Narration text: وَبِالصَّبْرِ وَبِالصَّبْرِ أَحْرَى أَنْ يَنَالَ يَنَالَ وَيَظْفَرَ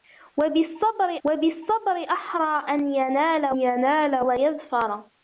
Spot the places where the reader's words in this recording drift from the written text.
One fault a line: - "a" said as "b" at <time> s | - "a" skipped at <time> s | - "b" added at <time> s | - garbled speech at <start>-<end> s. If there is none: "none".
none